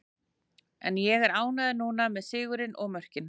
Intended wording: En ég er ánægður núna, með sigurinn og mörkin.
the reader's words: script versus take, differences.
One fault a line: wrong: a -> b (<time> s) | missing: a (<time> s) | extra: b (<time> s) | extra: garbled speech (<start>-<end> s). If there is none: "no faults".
no faults